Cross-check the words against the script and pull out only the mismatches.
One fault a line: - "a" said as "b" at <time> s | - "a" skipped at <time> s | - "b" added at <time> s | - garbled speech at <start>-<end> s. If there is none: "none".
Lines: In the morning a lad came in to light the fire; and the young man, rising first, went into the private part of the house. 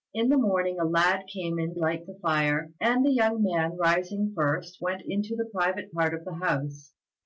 - "to" skipped at 1.8 s